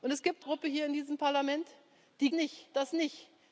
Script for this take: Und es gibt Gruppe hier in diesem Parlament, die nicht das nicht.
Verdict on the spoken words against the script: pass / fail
pass